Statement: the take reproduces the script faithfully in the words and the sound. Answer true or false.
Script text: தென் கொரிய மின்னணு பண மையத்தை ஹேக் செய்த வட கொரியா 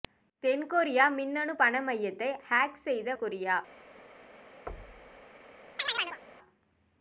false